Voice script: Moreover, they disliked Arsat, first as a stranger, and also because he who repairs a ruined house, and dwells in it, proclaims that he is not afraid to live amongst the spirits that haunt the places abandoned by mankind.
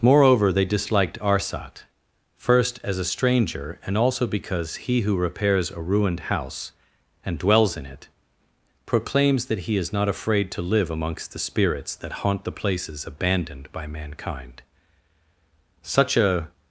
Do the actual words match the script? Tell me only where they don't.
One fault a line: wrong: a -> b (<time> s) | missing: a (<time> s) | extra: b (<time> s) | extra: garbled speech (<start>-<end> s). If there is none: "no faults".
extra: Such a (15.8 s)